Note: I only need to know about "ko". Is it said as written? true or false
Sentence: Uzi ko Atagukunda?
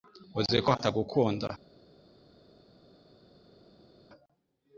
true